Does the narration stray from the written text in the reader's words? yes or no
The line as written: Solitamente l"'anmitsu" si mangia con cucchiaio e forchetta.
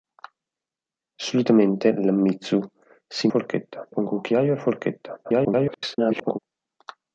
yes